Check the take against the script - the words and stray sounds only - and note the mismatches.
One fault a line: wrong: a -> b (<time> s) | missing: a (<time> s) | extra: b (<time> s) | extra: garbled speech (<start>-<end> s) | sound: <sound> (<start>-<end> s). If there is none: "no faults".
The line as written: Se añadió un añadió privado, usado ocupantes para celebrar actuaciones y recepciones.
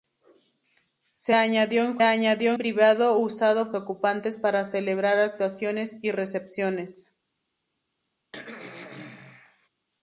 sound: throat clearing (8.3-9.7 s)